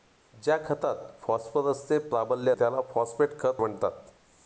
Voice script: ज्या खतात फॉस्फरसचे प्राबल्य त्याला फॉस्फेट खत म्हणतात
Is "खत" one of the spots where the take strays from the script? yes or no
no